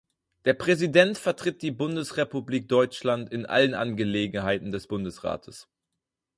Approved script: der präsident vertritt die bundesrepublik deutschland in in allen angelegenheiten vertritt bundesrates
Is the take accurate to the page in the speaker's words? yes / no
no